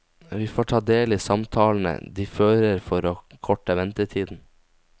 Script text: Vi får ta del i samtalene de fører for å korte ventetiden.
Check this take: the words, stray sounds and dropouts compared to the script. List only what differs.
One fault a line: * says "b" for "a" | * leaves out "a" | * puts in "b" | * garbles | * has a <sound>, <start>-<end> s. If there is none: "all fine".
all fine